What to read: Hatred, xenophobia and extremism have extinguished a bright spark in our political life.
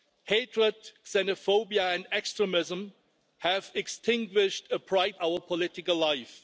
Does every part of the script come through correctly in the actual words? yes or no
no